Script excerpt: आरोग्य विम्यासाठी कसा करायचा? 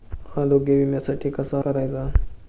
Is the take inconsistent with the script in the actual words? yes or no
no